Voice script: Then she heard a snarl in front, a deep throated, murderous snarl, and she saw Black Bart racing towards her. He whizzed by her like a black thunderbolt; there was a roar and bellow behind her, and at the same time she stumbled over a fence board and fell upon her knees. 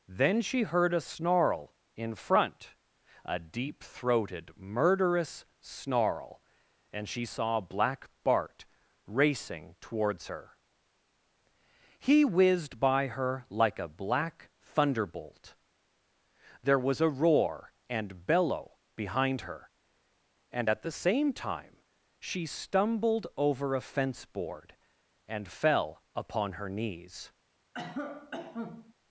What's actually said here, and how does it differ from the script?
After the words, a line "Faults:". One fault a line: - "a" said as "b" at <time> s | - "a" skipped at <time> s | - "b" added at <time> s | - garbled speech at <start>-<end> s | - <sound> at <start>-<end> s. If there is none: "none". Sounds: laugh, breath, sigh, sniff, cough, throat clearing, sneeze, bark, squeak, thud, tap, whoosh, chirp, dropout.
Then she heard a snarl in front, a deep throated, murderous snarl, and she saw Black Bart racing towards her. He whizzed by her like a black thunderbolt; there was a roar and bellow behind her, and at the same time she stumbled over a fence board and fell upon her knees.
Faults:
- cough at 27.7-28.9 s